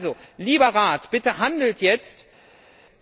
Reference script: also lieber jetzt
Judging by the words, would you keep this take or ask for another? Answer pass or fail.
fail